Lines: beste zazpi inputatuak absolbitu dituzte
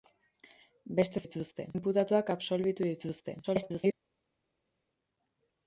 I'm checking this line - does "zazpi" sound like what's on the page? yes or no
no